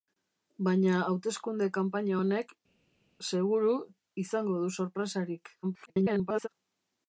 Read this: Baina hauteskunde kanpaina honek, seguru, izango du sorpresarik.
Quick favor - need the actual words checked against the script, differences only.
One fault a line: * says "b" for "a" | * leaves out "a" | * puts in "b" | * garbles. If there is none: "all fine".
* garbles